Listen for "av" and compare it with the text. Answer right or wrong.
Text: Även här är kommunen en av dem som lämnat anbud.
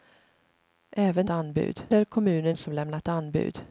wrong